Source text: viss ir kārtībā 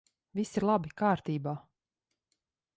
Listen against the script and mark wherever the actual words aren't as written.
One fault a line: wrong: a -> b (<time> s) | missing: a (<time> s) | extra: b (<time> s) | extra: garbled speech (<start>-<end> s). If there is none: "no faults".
extra: labi (0.7 s)